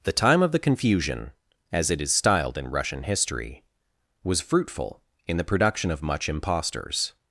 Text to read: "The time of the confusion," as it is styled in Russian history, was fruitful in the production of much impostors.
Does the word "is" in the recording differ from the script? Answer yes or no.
no